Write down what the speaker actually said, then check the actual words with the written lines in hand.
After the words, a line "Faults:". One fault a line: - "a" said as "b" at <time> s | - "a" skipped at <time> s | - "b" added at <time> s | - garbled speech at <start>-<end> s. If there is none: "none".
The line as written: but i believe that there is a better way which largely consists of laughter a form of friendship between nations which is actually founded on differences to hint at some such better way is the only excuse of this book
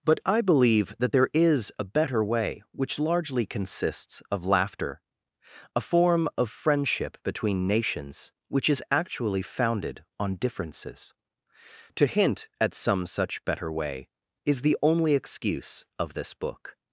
but i believe that there is a better way which largely consists of laughter a form of friendship between nations which is actually founded on differences to hint at some such better way is the only excuse of this book
Faults:
none